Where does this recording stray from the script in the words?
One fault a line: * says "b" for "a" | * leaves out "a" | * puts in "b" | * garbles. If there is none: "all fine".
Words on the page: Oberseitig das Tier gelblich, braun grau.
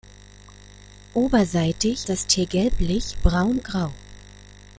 all fine